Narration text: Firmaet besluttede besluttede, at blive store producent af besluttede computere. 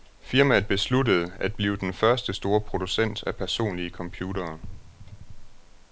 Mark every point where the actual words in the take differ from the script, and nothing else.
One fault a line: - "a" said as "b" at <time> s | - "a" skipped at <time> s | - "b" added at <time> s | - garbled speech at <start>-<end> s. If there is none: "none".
- "besluttede" skipped at 1.3 s
- "den første" added at 1.8 s
- "besluttede" said as "personlige" at 3.3 s